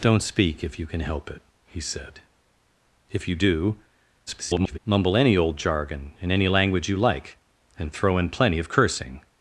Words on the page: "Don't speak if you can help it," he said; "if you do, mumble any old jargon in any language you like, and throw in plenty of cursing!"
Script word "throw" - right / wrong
right